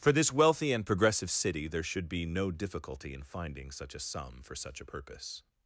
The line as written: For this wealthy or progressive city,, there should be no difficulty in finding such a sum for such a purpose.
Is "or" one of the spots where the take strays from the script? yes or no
yes